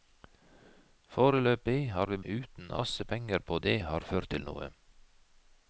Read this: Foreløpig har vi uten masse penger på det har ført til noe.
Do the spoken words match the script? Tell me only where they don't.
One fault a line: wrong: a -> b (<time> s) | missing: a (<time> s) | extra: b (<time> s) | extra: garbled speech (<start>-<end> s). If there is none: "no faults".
no faults